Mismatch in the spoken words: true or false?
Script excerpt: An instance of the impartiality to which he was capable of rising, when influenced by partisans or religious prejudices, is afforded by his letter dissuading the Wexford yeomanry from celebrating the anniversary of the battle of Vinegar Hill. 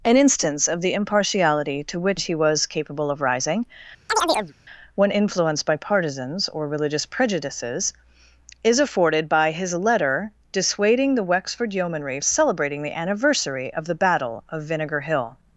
true